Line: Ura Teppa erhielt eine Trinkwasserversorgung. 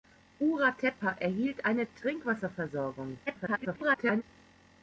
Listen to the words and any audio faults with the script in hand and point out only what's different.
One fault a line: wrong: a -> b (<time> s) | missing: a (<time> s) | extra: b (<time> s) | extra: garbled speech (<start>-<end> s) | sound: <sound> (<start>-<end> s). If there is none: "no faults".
extra: garbled speech (3.3-4.2 s)